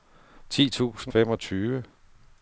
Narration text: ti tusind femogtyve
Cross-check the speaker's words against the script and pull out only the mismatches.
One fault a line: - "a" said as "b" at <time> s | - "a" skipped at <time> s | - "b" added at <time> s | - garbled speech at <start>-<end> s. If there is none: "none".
none